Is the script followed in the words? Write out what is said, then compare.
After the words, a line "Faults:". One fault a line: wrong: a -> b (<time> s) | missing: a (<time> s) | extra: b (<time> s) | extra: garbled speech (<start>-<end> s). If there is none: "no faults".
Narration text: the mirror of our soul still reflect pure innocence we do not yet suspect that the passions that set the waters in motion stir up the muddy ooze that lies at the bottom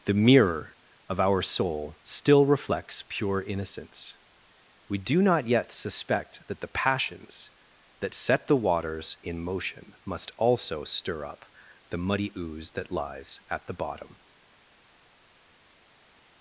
the mirror of our soul still reflects pure innocence we do not yet suspect that the passions that set the waters in motion must also stir up the muddy ooze that lies at the bottom
Faults:
wrong: reflect -> reflects (2.5 s)
extra: must also (10.1 s)